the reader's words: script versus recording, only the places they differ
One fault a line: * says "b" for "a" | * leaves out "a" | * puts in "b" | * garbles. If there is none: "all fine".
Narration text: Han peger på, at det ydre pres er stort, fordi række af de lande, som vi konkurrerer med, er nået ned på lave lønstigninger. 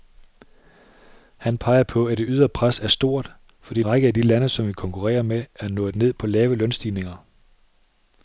all fine